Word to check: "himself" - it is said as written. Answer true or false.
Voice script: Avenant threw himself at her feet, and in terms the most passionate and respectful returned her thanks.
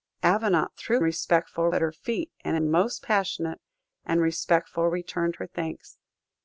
false